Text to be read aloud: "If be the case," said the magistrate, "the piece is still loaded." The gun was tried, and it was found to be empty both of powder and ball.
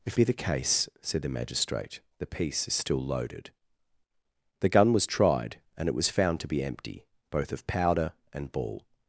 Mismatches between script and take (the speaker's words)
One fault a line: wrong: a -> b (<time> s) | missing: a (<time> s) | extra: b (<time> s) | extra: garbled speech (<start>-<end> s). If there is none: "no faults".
no faults